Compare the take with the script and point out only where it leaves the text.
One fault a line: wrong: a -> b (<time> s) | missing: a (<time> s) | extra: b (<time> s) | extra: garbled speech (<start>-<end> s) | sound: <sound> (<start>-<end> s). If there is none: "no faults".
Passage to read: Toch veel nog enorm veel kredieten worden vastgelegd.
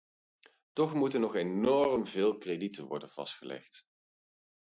wrong: veel -> moeten (0.9 s)